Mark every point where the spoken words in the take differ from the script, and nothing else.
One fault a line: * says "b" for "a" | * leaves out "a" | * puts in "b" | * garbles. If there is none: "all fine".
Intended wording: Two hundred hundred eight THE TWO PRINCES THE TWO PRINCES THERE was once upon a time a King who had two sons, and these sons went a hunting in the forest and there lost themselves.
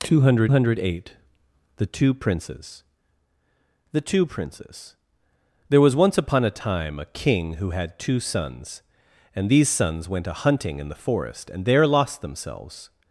all fine